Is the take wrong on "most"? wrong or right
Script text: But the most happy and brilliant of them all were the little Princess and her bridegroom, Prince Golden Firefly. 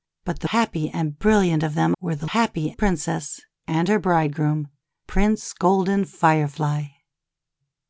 wrong